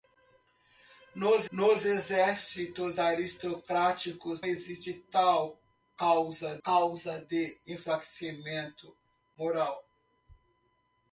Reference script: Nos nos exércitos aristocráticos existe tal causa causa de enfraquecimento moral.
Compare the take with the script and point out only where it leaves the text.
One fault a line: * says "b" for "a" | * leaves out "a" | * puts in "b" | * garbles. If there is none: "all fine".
all fine